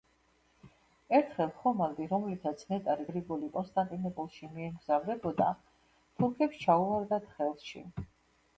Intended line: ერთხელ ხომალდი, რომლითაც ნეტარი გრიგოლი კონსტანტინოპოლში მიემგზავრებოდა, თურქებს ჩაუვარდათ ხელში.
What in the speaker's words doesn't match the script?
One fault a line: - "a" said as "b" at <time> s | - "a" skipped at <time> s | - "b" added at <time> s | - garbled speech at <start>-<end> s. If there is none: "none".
none